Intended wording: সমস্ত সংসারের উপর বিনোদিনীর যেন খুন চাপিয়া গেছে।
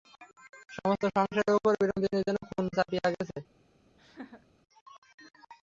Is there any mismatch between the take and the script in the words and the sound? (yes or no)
yes